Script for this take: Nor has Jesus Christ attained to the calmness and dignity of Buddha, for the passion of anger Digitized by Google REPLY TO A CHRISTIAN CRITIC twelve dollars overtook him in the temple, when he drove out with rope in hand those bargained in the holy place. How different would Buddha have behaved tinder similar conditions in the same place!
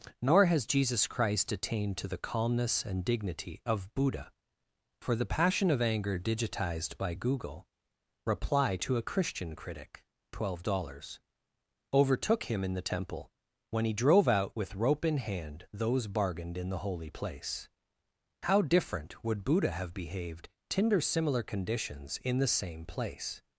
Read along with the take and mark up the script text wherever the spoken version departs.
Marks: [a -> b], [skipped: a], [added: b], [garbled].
Nor has Jesus Christ attained to the calmness and dignity of Buddha, for the passion of anger Digitized by Google REPLY TO A CHRISTIAN CRITIC twelve dollars overtook him in the temple, when he drove out with rope in hand those bargained in the holy place. How different would Buddha have behaved tinder similar conditions in the same place!